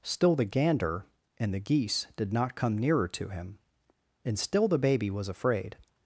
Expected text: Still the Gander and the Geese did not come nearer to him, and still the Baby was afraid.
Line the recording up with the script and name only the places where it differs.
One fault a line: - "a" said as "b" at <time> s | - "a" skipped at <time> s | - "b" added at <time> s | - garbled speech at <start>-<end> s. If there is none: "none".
none